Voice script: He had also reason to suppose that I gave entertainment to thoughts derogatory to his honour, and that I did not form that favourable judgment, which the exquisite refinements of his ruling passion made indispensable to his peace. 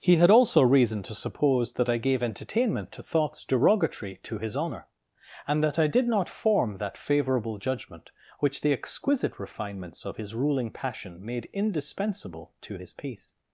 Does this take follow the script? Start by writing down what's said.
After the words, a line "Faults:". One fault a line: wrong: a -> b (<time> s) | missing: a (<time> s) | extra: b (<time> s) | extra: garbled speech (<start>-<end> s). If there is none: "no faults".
He had also reason to suppose that I gave entertainment to thoughts derogatory to his honour, and that I did not form that favourable judgment, which the exquisite refinements of his ruling passion made indispensable to his peace.
Faults:
no faults